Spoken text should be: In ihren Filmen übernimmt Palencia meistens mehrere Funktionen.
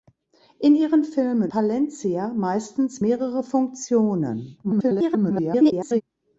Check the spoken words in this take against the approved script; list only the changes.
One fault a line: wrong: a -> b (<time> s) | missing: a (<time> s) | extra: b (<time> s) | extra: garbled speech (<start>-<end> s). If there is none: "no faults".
missing: übernimmt (1.5 s)
extra: garbled speech (4.6-6.0 s)